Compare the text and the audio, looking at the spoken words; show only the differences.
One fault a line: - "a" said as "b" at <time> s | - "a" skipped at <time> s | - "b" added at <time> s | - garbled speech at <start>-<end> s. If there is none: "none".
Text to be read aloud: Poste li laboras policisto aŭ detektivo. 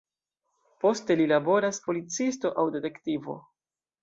none